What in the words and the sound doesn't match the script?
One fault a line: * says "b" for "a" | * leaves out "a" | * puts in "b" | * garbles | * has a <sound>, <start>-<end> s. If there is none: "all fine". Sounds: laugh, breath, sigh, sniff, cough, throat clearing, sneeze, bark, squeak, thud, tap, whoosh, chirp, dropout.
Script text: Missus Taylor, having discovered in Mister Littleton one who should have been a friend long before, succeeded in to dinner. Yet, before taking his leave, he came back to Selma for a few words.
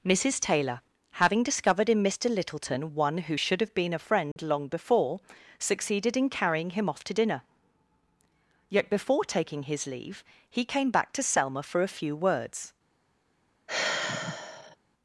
* has a dropout, 4.3-4.4 s
* puts in "carrying him off"
* has a sigh, 13.7-14.8 s